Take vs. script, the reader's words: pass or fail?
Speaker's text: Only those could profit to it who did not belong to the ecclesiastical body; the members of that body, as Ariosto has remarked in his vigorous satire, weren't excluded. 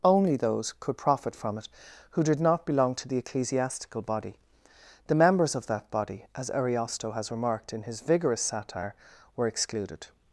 fail